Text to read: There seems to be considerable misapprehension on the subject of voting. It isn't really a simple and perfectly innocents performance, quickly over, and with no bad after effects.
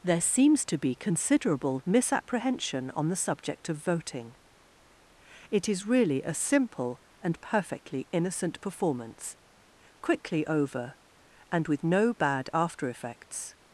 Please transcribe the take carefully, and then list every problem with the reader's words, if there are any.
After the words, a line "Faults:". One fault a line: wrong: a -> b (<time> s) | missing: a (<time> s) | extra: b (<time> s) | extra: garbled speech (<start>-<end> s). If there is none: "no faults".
There seems to be considerable misapprehension on the subject of voting. It is really a simple and perfectly innocent performance, quickly over, and with no bad after effects.
Faults:
wrong: isn't -> is (5.7 s)
wrong: innocents -> innocent (8.1 s)